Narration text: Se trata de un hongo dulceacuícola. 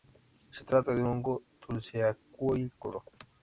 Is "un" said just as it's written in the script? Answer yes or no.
no